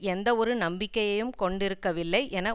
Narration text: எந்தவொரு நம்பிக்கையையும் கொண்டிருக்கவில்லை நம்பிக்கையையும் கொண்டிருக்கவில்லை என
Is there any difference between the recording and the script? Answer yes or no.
yes